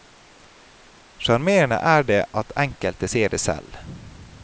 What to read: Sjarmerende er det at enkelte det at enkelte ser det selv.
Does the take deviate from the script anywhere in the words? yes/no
yes